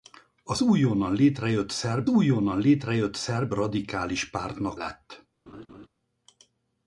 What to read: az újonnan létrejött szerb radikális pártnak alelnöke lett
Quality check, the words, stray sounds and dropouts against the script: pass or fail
fail